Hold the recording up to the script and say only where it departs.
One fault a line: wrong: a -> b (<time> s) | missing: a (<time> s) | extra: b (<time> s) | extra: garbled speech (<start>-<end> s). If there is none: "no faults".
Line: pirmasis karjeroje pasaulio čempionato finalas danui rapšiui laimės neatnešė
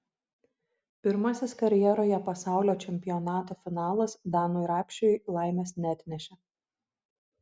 no faults